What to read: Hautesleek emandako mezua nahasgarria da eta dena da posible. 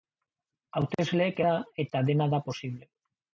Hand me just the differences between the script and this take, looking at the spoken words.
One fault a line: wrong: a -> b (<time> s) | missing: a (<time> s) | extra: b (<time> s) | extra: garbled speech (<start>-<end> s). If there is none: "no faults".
missing: emandako mezua nahasgarria (1.4 s)